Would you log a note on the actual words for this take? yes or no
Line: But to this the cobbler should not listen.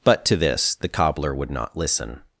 yes